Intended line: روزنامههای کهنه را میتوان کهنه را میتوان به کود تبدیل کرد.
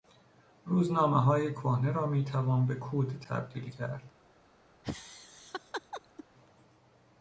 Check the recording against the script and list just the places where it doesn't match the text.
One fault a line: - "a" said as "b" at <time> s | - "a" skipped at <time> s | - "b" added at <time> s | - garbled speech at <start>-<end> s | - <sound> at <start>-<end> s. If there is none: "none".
- "کهنه را میتوان" skipped at 2.6 s
- laugh at 4.8-6.2 s